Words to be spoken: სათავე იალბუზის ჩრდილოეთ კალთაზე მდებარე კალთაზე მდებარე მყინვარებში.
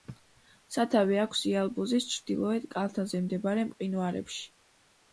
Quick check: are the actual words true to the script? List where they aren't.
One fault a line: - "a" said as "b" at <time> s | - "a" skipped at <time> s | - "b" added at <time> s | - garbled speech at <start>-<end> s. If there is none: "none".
- "აქვს" added at 1.2 s
- "კალთაზე მდებარე" skipped at 3.7 s